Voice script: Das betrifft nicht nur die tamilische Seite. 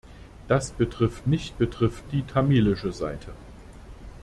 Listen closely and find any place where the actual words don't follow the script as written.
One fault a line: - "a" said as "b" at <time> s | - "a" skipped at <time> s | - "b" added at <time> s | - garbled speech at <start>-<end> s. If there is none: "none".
- "nur" said as "betrifft" at 1.5 s